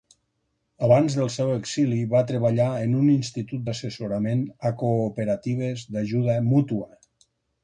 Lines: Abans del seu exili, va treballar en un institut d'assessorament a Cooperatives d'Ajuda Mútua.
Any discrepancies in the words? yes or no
no